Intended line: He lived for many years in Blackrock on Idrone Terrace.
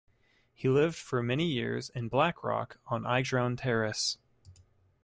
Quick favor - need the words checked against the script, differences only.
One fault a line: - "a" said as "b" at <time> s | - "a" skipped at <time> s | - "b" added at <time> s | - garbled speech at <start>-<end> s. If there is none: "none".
none